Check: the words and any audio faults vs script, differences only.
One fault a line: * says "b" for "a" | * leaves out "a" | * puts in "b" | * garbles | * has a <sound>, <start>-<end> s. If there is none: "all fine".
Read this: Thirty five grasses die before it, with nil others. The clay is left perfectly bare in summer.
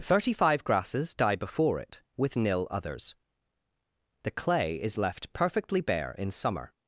all fine